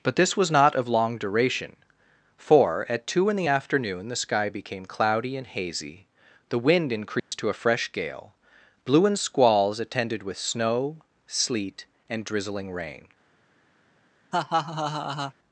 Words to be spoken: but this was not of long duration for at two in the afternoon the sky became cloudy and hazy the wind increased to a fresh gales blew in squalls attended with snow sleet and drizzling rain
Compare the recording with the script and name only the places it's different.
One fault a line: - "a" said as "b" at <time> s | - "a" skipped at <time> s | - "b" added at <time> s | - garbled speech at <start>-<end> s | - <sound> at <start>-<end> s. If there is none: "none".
- dropout at 7.2-7.3 s
- "gales" said as "gale" at 7.9 s
- laugh at 14.3-15.3 s